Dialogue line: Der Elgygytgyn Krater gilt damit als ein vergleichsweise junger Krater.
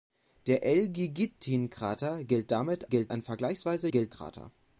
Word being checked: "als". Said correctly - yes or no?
no